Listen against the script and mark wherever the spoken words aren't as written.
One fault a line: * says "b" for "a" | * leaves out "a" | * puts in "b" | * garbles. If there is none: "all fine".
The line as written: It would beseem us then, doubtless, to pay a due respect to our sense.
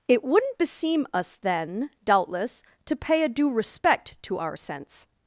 * says "wouldn't" for "would"